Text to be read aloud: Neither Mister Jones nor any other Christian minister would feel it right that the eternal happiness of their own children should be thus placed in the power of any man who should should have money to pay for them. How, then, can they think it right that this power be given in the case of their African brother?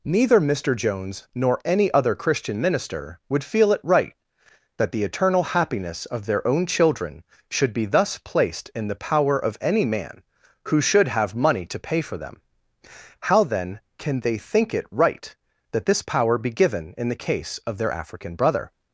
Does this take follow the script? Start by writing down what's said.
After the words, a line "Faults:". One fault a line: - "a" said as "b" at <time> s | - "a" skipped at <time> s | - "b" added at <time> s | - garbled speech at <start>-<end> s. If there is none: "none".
Neither Mister Jones nor any other Christian minister would feel it right that the eternal happiness of their own children should be thus placed in the power of any man who should have money to pay for them. How, then, can they think it right that this power be given in the case of their African brother?
Faults:
- "should" skipped at 11.1 s